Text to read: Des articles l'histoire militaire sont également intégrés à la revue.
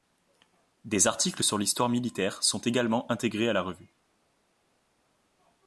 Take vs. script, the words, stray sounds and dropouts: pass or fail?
fail